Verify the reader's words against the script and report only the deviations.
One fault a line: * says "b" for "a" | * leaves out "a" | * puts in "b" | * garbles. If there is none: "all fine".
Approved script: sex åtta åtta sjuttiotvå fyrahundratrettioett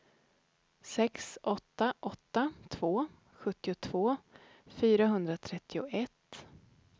* puts in "två"